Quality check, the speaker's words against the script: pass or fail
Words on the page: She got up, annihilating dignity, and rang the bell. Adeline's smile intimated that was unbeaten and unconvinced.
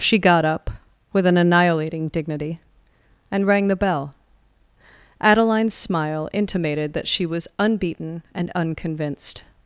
fail